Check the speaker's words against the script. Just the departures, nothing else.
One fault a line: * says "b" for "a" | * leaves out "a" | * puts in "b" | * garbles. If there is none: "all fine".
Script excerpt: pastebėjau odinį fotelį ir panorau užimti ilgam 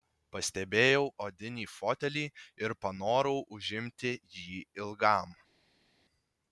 * puts in "jį"